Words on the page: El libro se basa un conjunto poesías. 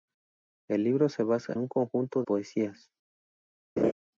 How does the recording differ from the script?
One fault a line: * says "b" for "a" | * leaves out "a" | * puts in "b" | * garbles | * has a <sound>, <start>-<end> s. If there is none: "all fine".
* has a laugh, 3.8-3.9 s